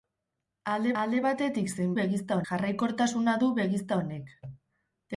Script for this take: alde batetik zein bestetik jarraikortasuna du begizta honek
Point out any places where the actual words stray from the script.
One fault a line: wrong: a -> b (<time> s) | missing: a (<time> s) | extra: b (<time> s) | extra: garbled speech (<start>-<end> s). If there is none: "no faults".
extra: alde (1.0 s)
wrong: bestetik -> begizta (2.0 s)